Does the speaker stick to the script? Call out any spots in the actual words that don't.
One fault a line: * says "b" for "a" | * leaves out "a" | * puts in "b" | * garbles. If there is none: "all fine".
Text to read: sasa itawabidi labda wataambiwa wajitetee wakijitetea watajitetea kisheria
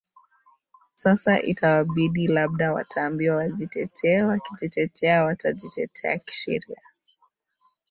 all fine